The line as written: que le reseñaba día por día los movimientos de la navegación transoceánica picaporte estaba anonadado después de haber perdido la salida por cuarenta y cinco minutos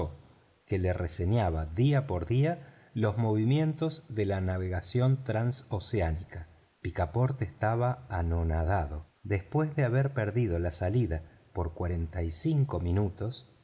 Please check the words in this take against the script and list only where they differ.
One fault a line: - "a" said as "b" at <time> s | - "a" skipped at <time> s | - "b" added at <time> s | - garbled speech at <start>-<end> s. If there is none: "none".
none